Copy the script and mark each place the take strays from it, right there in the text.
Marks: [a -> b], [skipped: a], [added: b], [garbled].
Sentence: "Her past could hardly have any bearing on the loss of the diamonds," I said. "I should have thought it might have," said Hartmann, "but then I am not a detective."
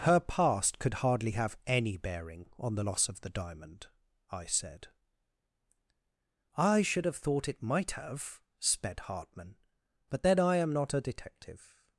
"Her past could hardly have any bearing on the loss of the [diamonds," -> diamond] I said. "I should have thought it might have," [said -> sped] Hartmann, "but then I am not a detective."